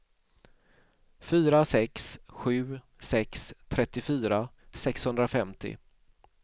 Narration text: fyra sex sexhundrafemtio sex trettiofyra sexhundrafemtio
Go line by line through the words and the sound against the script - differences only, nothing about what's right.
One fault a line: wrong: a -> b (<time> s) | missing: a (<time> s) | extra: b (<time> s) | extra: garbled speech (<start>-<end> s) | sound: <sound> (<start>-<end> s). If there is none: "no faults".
wrong: sexhundrafemtio -> sju (2.3 s)